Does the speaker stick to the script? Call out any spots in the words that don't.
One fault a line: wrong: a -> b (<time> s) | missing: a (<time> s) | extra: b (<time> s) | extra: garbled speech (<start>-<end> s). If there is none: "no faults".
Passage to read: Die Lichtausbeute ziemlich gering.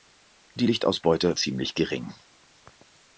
no faults